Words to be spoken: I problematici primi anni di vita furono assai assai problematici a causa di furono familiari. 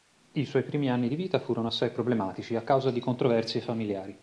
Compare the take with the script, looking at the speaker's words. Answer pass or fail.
fail